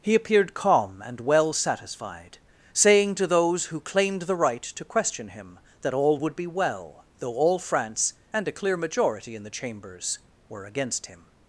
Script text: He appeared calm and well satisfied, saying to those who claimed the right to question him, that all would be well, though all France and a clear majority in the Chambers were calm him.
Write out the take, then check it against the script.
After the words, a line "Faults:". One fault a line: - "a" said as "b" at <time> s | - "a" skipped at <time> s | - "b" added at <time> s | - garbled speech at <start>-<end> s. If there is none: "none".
He appeared calm and well satisfied, saying to those who claimed the right to question him, that all would be well, though all France and a clear majority in the Chambers were against him.
Faults:
- "calm" said as "against" at 10.6 s